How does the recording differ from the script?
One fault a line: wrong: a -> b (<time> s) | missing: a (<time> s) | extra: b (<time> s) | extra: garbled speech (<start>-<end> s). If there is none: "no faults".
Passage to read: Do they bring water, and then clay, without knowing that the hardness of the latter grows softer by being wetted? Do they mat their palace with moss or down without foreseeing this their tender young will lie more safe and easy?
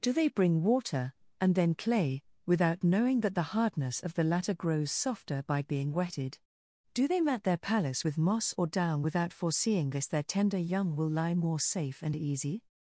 no faults